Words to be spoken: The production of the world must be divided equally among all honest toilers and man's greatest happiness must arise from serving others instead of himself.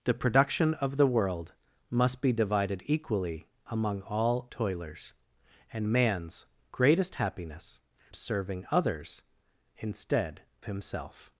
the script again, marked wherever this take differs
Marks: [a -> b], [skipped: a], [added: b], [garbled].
The production of the world must be divided equally among all [skipped: honest] toilers and man's greatest happiness [skipped: must arise from] serving others instead [skipped: of] himself.